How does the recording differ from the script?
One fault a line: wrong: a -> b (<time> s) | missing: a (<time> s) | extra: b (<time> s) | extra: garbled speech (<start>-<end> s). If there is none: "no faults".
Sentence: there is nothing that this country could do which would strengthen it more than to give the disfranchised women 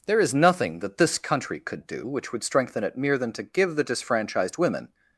wrong: more -> mere (3.0 s)